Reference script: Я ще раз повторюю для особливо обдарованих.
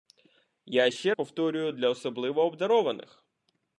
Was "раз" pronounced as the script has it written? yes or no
no